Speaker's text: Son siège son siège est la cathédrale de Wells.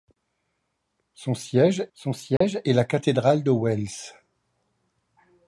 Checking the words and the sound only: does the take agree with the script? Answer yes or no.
no